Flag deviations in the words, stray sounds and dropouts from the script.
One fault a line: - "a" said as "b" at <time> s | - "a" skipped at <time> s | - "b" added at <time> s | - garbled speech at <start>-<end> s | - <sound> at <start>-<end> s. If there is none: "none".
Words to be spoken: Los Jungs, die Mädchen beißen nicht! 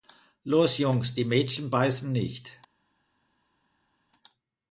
none